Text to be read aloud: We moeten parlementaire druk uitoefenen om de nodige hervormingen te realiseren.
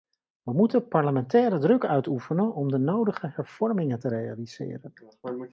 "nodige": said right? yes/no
yes